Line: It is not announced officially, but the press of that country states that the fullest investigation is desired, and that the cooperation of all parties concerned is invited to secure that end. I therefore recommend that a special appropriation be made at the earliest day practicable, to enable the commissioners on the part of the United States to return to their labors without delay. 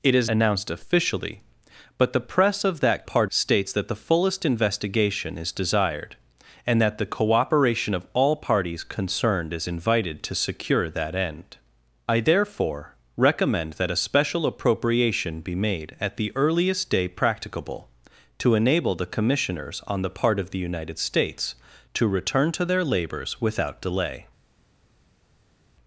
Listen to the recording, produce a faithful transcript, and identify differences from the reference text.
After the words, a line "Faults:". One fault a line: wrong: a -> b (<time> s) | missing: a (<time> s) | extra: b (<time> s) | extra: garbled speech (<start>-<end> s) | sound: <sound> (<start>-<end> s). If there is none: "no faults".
It is announced officially, but the press of that part states that the fullest investigation is desired, and that the cooperation of all parties concerned is invited to secure that end. I therefore recommend that a special appropriation be made at the earliest day practicable, to enable the commissioners on the part of the United States to return to their labors without delay.
Faults:
missing: not (0.3 s)
wrong: country -> part (3.0 s)